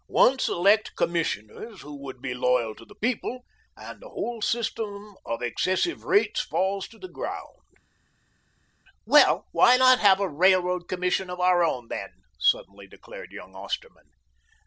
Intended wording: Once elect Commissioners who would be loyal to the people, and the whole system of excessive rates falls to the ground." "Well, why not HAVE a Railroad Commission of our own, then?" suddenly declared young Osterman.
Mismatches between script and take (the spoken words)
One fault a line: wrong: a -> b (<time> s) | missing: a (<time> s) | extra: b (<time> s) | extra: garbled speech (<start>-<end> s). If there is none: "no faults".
no faults